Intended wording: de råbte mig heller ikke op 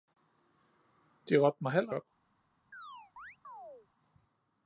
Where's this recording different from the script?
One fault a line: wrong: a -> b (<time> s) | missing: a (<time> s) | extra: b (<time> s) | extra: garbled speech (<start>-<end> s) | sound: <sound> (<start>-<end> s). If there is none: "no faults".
missing: ikke (1.9 s)
sound: chirp (2.7-3.9 s)